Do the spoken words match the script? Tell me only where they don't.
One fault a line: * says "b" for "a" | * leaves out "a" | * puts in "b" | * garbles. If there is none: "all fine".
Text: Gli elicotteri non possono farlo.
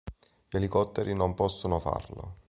all fine